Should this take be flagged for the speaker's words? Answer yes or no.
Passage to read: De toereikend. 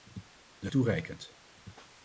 no